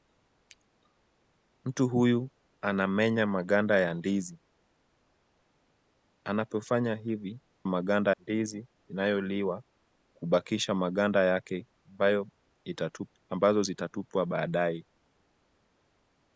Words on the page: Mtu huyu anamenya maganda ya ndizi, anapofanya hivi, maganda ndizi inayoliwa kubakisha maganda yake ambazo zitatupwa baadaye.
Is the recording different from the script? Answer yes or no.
no